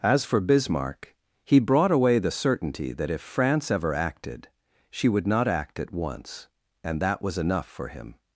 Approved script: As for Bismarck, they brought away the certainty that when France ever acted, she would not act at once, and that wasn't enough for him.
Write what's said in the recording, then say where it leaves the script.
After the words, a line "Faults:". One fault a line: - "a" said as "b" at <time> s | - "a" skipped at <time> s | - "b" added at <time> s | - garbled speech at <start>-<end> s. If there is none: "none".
As for Bismarck, he brought away the certainty that if France ever acted, she would not act at once, and that was enough for him.
Faults:
- "they" said as "he" at 1.4 s
- "when" said as "if" at 3.1 s
- "wasn't" said as "was" at 7.2 s